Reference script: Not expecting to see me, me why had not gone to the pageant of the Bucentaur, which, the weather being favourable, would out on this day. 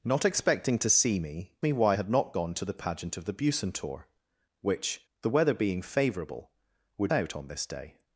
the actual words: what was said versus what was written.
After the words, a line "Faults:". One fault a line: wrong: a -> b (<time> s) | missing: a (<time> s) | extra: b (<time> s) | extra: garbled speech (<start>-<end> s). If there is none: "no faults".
Not expecting to see me, me why had not gone to the pageant of the Bucentaur, which, the weather being favourable, would out on this day.
Faults:
no faults